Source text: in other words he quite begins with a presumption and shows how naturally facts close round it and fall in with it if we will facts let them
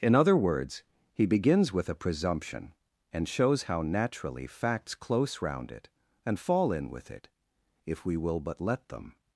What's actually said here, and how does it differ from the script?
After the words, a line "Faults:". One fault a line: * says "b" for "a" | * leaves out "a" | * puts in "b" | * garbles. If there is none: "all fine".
in other words he begins with a presumption and shows how naturally facts close round it and fall in with it if we will but let them
Faults:
* leaves out "quite"
* says "but" for "facts"